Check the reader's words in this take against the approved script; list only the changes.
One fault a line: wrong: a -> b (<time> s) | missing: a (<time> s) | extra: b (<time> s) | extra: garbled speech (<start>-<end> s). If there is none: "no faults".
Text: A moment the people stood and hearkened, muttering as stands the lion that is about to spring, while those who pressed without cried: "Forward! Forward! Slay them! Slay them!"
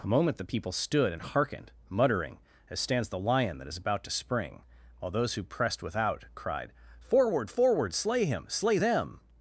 wrong: them -> him (8.2 s)